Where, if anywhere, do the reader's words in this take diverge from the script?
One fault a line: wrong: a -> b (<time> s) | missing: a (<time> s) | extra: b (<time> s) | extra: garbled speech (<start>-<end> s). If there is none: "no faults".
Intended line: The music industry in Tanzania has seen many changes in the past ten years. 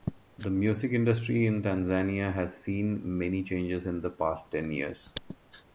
no faults